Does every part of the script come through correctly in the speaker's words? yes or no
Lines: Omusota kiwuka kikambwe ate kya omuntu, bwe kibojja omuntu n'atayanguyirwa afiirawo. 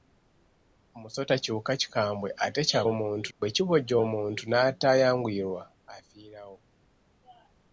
yes